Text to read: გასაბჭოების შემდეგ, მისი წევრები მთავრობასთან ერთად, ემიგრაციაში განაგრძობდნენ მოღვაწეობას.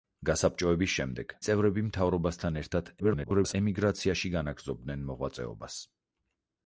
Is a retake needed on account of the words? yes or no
yes